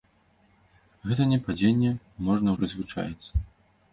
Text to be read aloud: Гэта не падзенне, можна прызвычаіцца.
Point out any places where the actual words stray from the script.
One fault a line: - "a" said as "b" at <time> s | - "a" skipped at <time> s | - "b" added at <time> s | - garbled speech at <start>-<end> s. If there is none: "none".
none